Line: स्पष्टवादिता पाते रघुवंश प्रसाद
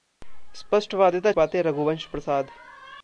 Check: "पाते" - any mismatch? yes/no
no